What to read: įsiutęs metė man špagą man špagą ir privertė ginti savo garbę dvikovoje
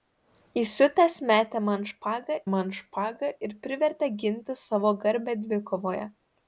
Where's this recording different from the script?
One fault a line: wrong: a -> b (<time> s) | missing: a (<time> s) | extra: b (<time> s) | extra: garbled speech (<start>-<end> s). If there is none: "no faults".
no faults